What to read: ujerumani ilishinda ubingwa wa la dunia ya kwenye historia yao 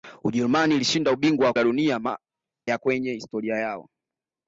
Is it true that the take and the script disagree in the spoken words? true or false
false